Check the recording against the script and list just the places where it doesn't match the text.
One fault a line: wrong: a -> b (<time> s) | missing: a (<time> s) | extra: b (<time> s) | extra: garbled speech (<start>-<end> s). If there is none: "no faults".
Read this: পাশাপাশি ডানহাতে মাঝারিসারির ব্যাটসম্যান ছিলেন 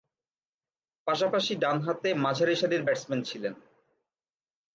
no faults